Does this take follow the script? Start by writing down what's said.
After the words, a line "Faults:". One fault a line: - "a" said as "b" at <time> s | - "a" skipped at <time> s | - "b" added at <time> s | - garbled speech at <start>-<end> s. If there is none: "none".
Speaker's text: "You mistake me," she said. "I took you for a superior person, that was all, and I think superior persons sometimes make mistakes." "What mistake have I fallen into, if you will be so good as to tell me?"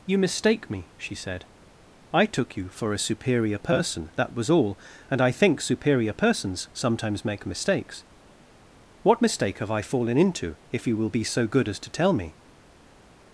"You mistake me," she said. "I took you for a superior person, that was all, and I think superior persons sometimes make mistakes." "What mistake have I fallen into, if you will be so good as to tell me?"
Faults:
none